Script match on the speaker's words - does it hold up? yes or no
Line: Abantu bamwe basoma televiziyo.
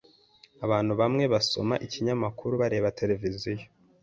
no